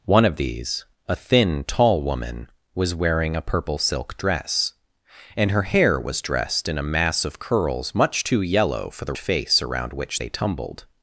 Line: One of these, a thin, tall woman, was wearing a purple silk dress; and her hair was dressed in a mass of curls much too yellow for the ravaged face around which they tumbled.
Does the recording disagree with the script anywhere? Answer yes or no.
yes